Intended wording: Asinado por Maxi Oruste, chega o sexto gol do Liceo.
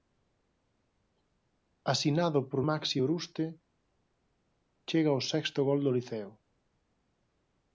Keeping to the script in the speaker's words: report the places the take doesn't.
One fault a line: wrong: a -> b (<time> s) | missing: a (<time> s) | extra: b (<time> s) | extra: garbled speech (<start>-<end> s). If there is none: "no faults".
no faults